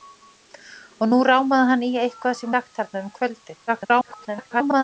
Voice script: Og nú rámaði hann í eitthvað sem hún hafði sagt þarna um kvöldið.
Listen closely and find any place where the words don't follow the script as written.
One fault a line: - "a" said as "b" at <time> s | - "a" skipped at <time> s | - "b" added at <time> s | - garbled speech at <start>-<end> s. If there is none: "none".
- "hún hafði" skipped at 2.5 s
- garbled speech at 3.7-4.8 s